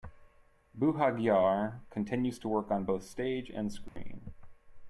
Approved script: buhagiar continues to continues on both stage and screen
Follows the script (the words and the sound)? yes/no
no